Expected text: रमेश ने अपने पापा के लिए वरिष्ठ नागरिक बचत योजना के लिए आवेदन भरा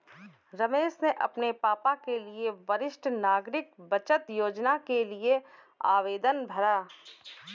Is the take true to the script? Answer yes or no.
yes